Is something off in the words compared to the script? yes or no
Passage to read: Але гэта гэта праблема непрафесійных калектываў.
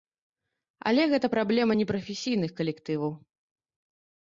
yes